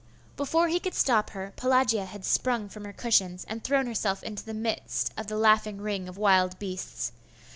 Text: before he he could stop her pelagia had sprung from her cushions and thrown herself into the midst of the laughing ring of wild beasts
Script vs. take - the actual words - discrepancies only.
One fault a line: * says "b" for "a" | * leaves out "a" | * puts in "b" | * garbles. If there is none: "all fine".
* leaves out "he"